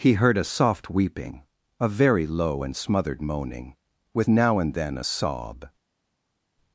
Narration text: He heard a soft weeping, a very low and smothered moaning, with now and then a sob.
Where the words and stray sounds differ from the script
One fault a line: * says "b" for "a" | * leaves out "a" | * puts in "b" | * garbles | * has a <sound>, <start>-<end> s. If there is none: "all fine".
all fine